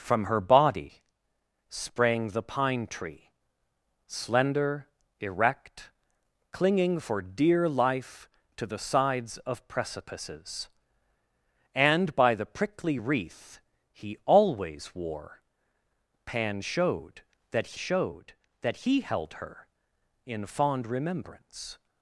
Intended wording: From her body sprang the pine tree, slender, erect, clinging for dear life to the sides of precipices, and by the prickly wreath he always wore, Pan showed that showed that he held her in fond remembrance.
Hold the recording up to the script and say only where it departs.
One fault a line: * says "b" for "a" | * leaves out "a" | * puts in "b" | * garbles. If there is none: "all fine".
all fine